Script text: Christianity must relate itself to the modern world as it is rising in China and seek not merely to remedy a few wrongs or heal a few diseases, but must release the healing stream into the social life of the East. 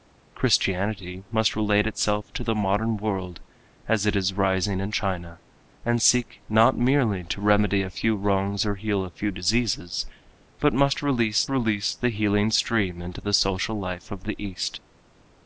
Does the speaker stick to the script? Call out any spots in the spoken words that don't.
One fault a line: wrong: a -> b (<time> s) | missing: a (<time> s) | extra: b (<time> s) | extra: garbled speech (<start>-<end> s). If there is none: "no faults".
extra: release (11.5 s)